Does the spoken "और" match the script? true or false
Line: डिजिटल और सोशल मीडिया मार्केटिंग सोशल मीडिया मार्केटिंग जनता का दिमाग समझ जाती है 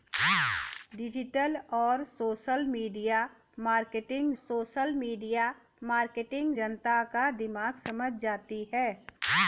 true